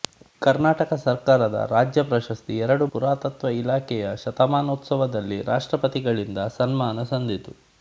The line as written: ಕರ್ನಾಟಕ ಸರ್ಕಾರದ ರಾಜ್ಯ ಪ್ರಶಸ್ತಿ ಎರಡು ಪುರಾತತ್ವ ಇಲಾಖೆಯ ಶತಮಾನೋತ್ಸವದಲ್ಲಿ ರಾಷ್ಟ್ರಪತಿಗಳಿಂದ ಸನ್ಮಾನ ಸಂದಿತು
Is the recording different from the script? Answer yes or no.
no